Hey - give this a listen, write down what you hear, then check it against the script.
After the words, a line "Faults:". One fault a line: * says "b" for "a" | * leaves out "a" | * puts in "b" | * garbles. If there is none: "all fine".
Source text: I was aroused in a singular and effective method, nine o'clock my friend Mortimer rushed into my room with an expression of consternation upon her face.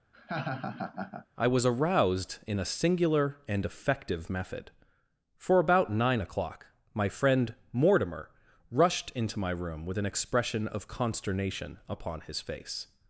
I was aroused in a singular and effective method, for about nine o'clock my friend Mortimer rushed into my room with an expression of consternation upon his face.
Faults:
* puts in "for about"
* says "his" for "her"